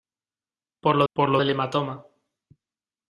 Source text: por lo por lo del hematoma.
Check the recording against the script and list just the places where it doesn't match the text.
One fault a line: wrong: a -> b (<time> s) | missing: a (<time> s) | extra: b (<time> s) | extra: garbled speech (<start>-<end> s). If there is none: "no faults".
no faults